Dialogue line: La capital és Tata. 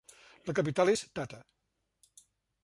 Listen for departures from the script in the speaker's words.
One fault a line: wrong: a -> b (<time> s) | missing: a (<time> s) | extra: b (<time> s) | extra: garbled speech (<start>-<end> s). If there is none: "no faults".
no faults